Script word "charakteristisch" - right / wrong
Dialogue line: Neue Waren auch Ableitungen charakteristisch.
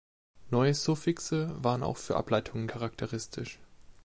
right